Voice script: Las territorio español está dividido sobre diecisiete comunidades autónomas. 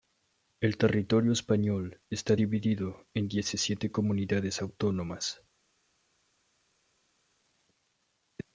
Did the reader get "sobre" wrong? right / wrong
wrong